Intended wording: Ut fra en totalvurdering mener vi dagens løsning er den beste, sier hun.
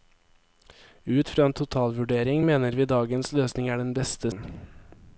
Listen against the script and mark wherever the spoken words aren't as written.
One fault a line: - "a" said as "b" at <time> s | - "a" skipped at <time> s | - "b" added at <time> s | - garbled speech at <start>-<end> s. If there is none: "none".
- "sier" skipped at 4.3 s